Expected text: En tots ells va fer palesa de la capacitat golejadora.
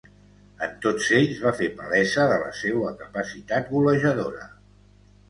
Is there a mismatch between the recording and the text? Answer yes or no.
yes